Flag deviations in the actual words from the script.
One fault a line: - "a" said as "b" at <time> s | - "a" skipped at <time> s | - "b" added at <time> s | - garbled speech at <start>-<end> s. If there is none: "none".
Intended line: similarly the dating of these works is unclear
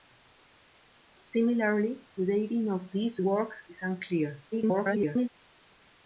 - garbled speech at 4.5-5.3 s